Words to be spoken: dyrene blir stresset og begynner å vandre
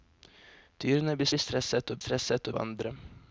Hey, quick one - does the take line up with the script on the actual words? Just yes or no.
no